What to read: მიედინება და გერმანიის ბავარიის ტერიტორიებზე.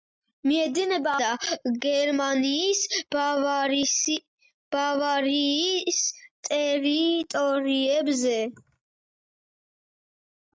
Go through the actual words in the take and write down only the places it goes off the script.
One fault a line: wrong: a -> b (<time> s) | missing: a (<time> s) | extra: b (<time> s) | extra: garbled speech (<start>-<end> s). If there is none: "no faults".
no faults